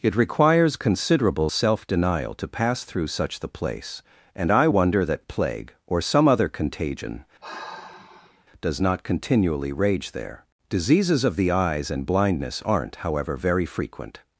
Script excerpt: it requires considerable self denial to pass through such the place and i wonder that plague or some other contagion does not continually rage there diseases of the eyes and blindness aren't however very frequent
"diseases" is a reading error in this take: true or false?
false